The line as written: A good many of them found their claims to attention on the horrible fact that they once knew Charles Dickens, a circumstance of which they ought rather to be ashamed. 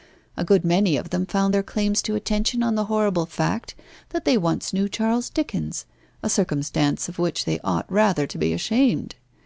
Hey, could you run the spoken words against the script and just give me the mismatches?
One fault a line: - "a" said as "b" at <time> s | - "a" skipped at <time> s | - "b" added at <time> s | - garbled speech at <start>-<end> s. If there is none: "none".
none